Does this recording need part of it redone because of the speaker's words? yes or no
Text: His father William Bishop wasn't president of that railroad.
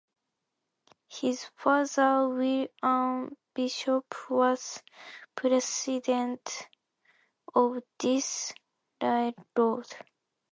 yes